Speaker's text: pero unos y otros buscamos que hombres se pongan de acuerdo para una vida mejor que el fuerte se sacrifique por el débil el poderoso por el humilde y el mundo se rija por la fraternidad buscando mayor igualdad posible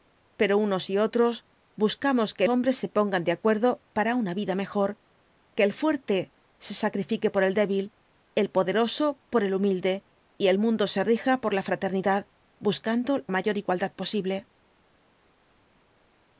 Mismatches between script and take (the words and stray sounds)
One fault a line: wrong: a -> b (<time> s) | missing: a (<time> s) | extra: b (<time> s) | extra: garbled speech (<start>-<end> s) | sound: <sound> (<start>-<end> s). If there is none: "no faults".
no faults